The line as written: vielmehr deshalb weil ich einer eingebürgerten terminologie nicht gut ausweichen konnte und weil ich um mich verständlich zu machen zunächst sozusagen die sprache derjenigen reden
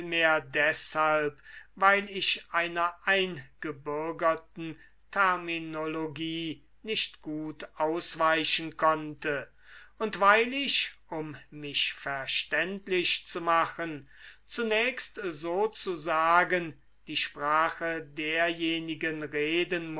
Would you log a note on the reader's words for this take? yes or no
no